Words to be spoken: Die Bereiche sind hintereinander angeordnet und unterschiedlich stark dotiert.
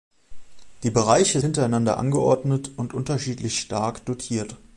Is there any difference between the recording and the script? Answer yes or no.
yes